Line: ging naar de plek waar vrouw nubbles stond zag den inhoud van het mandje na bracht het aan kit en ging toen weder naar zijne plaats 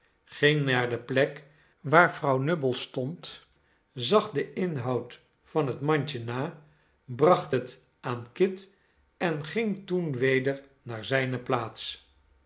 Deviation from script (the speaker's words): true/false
false